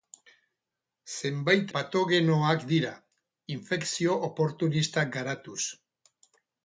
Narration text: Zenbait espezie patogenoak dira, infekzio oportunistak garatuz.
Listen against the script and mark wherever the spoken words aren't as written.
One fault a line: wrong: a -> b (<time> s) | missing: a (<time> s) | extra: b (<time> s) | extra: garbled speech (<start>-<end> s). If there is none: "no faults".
missing: espezie (1.7 s)